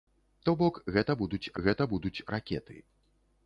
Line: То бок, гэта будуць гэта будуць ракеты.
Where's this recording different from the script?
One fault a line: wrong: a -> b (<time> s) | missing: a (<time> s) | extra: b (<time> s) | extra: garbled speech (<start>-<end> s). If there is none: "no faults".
no faults